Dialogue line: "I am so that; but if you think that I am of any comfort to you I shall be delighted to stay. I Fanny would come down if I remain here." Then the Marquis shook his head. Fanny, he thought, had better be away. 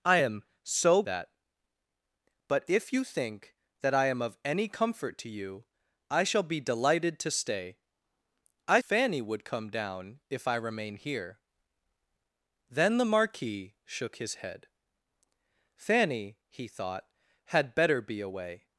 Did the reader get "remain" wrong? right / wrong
right